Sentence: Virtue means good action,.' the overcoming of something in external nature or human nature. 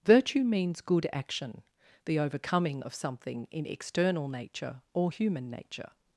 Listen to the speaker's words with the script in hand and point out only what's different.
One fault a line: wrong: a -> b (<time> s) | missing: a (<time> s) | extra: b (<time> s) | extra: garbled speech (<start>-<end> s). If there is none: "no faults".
no faults